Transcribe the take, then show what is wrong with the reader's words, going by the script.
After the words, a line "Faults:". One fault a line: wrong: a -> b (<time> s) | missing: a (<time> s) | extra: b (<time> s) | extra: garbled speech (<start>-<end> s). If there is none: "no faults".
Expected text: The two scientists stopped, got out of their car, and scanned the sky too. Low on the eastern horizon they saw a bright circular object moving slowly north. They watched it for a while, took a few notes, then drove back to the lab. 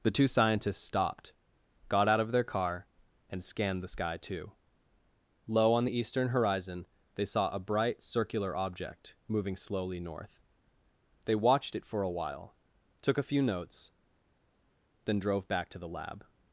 The two scientists stopped, got out of their car, and scanned the sky too. Low on the eastern horizon they saw a bright circular object moving slowly north. They watched it for a while, took a few notes, then drove back to the lab.
Faults:
no faults